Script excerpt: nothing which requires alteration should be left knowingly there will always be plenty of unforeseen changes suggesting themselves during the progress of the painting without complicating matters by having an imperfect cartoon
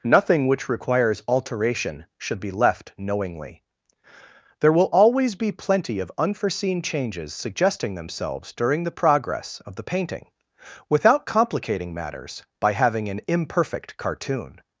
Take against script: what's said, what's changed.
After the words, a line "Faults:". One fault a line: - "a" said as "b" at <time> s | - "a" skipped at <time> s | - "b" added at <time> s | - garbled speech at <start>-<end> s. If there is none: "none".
nothing which requires alteration should be left knowingly there will always be plenty of unforeseen changes suggesting themselves during the progress of the painting without complicating matters by having an imperfect cartoon
Faults:
none